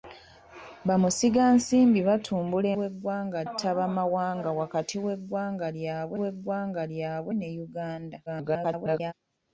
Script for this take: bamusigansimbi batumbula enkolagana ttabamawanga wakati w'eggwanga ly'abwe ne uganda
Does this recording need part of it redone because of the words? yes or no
yes